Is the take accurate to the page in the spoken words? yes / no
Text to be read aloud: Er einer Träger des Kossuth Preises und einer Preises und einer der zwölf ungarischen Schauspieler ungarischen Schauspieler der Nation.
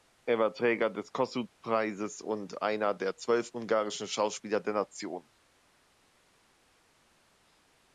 no